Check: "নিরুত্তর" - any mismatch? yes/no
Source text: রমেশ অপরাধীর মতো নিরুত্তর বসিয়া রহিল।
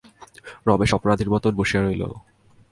yes